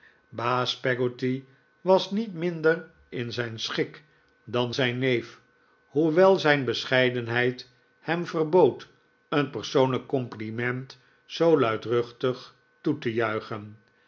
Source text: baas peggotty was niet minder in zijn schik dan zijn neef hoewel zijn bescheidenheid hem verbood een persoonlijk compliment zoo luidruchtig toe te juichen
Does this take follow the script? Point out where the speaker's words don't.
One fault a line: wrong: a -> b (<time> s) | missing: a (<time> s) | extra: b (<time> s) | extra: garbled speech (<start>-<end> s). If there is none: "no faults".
no faults